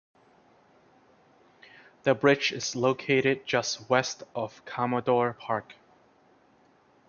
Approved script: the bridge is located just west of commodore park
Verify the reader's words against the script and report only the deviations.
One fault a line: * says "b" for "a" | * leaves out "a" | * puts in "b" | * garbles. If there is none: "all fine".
all fine